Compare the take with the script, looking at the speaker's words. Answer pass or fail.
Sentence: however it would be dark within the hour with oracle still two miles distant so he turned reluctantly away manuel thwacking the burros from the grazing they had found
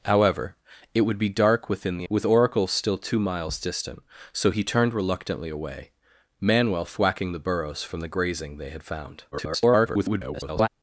fail